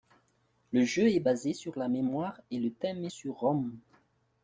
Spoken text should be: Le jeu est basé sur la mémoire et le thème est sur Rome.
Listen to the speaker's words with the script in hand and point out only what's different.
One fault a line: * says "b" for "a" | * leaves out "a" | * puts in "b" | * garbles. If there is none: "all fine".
all fine